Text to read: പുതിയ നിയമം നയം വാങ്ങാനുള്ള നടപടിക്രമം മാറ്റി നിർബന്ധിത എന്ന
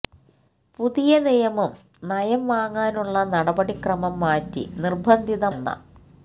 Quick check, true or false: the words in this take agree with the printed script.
true